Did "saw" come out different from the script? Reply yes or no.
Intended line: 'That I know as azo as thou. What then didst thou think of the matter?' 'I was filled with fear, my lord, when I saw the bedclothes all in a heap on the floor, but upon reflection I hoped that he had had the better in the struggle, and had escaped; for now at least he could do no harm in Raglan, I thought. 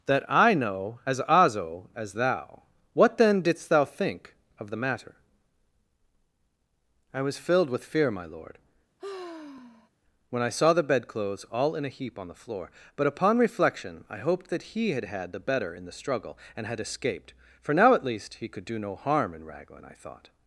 no